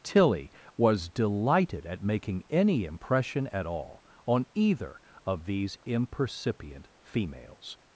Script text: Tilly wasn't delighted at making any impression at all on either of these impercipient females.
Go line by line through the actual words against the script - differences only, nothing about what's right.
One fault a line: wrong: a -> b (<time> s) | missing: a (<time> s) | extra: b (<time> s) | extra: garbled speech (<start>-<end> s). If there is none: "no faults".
wrong: wasn't -> was (0.8 s)